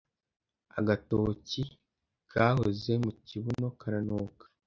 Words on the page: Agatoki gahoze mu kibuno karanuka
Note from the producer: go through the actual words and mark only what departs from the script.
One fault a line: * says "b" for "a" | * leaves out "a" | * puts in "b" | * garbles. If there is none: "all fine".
all fine